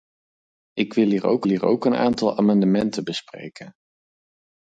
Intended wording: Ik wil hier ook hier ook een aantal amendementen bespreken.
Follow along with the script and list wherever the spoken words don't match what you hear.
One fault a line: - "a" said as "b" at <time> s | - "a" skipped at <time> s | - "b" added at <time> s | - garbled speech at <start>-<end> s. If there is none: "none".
none